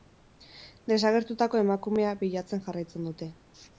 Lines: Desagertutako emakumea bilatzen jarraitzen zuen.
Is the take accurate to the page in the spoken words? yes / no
no